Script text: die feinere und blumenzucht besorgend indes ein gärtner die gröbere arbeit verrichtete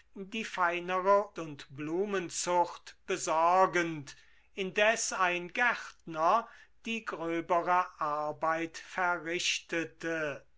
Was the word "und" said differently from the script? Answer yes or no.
no